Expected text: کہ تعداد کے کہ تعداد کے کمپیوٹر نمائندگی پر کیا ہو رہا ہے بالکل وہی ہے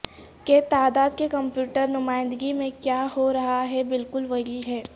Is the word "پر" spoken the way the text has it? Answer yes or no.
no